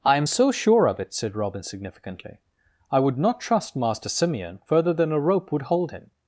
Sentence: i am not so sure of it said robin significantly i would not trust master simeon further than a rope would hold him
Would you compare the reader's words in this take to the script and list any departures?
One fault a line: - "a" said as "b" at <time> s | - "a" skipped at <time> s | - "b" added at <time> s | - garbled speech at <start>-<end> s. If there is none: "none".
- "not" skipped at 0.2 s